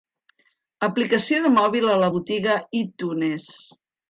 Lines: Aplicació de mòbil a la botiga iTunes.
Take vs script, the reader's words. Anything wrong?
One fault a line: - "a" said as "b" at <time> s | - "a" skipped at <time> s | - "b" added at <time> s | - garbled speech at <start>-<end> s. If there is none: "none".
none